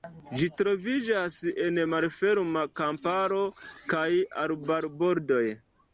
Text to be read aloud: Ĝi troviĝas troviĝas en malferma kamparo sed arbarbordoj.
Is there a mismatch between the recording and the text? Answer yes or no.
yes